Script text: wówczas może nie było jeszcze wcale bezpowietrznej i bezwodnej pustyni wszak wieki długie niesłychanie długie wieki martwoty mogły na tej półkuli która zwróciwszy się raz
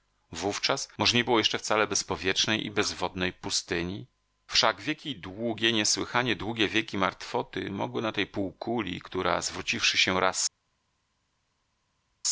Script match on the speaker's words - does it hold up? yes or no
yes